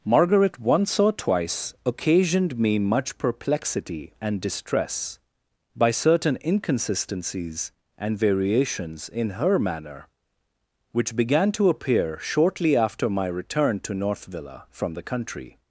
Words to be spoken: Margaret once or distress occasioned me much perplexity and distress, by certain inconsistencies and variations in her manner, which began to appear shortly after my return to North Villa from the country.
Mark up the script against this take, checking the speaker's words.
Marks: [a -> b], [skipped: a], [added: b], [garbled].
Margaret once or [distress -> twice] occasioned me much perplexity and distress, by certain inconsistencies and variations in her manner, which began to appear shortly after my return to North Villa from the country.